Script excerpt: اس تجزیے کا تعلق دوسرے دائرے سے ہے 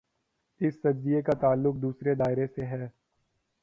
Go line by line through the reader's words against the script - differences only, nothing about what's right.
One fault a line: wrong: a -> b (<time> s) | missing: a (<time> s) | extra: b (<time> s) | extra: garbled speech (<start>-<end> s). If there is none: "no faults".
no faults